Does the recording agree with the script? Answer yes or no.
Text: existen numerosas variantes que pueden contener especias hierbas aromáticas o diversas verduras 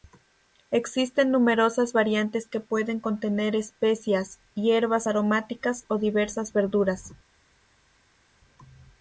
yes